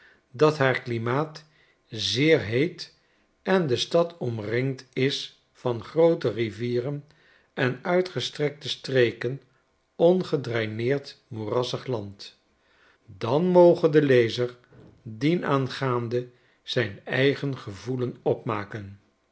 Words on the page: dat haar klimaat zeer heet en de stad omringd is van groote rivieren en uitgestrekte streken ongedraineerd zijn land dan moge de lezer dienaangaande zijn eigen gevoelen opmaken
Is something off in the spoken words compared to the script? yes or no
yes